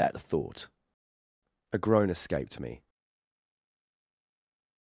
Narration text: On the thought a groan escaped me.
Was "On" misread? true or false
true